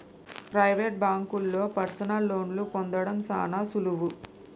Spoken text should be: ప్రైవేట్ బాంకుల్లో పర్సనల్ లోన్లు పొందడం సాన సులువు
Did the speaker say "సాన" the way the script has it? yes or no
yes